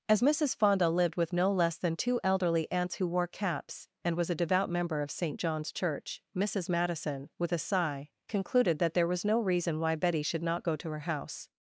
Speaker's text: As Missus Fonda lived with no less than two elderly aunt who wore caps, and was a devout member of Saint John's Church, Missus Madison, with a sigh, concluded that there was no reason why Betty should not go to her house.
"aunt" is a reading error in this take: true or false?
true